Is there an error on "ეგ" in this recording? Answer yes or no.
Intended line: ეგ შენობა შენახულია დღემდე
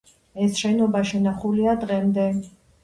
yes